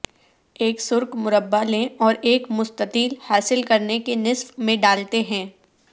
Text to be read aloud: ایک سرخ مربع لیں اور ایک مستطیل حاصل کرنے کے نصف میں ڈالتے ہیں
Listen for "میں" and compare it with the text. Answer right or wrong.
right